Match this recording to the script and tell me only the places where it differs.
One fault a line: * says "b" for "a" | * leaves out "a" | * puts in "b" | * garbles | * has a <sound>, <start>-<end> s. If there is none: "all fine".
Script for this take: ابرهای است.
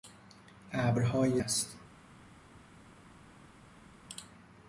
all fine